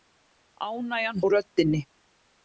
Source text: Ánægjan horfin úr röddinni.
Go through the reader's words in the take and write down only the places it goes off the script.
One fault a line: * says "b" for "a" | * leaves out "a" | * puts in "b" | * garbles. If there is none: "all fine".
* leaves out "horfin"